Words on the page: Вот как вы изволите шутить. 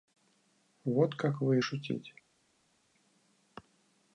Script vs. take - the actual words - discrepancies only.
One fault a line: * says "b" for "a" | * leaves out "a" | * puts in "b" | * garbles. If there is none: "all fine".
* leaves out "изволите"